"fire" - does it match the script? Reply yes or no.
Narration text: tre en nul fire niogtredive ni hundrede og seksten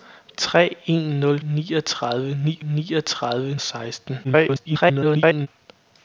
no